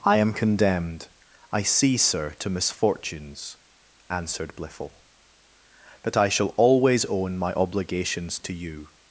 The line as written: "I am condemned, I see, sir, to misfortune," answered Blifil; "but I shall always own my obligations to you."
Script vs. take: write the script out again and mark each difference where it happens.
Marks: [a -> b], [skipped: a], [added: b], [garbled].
"I am condemned, I see, sir, to [misfortune," -> misfortunes] answered Blifil; "but I shall always own my obligations to you."